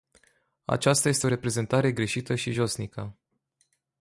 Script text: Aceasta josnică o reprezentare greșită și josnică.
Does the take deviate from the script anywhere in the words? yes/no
yes